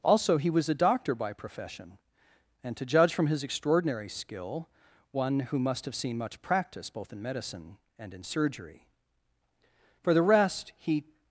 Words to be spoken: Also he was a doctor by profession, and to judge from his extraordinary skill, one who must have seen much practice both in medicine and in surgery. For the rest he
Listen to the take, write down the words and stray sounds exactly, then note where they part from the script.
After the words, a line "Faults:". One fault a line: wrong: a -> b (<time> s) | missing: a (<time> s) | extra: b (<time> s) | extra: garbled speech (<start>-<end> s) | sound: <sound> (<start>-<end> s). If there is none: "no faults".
Also he was a doctor by profession, and to judge from his extraordinary skill, one who must have seen much practice both in medicine and in surgery. For the rest he
Faults:
no faults